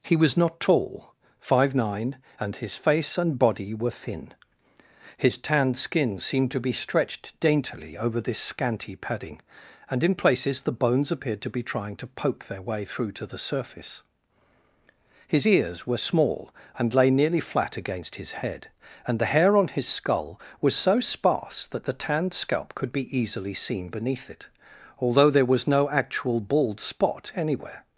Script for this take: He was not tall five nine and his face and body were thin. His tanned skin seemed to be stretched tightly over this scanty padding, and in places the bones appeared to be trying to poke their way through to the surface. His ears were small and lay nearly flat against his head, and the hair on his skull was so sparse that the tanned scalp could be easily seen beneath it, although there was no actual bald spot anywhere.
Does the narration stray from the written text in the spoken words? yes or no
yes